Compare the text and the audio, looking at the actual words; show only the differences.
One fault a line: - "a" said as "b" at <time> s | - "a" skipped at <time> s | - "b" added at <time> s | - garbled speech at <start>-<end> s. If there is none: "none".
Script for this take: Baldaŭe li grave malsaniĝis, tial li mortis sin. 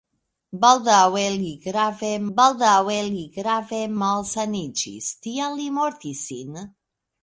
- "baldaŭe li grave" added at 2.4 s